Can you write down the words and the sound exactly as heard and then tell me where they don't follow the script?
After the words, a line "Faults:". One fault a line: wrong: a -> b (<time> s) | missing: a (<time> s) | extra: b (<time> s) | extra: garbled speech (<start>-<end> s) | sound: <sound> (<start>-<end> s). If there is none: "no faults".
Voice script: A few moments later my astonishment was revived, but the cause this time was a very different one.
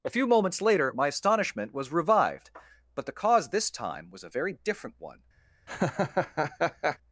A few moments later my astonishment was revived, but the cause this time was a very different one.
Faults:
sound: laugh (5.7-7.0 s)